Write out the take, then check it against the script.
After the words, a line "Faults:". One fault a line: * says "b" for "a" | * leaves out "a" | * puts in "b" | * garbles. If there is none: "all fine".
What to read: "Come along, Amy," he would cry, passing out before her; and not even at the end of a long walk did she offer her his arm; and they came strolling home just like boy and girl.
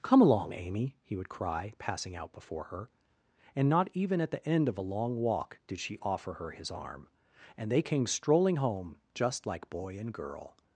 "Come along, Amy," he would cry, passing out before her; and not even at the end of a long walk did she offer her his arm; and they came strolling home just like boy and girl.
Faults:
all fine